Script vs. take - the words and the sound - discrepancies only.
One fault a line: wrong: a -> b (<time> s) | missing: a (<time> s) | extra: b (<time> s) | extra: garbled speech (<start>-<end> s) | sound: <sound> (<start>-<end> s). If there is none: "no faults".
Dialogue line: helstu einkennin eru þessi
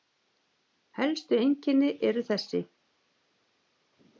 no faults